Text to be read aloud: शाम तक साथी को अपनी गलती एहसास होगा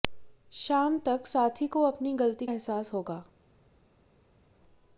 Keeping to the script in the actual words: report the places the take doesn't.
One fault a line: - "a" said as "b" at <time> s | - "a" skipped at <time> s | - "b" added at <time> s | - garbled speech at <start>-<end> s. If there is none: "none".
none